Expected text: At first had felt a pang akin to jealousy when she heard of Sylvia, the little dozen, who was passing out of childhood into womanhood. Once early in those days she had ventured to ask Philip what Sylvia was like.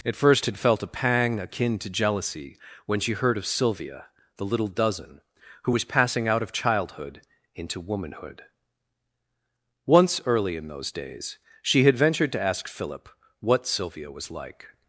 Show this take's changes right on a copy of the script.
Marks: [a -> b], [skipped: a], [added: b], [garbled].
At first had felt a pang akin to jealousy when she heard of Sylvia, the little dozen, who was passing out of childhood into womanhood. Once early in those days she had ventured to ask Philip what Sylvia was like.